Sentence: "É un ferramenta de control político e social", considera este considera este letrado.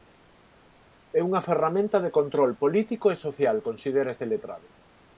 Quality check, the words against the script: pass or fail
fail